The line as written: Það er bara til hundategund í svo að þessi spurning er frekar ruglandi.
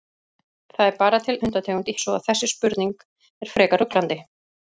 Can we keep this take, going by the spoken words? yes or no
yes